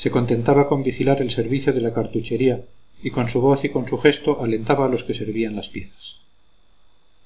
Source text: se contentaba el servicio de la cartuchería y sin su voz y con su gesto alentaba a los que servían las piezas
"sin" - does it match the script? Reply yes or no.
no